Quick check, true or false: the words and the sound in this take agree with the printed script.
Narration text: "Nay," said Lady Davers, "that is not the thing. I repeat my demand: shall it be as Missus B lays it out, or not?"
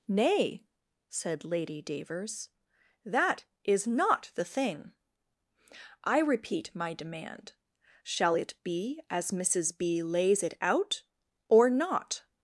true